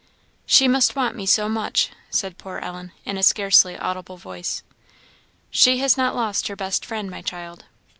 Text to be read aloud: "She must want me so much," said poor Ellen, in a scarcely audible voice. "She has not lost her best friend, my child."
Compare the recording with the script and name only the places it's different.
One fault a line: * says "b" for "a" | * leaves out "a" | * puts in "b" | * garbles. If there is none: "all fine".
all fine